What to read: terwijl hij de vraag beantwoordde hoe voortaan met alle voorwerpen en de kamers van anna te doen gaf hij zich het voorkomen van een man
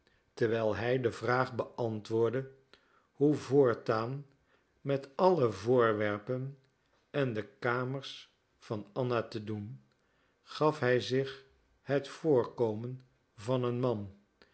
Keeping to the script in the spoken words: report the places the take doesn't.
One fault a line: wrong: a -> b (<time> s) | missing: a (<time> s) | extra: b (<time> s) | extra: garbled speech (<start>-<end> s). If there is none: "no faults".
no faults